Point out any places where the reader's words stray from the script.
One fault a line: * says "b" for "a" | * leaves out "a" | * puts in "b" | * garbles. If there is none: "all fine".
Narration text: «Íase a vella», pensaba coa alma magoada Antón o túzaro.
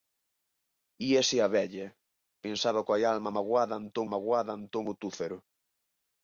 * puts in "magoada Antón"